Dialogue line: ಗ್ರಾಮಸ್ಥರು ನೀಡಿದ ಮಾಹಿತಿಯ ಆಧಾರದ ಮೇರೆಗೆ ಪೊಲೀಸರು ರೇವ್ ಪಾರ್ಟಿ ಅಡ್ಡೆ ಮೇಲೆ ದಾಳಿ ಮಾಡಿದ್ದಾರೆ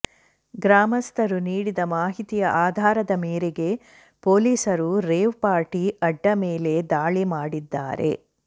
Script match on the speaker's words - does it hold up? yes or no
yes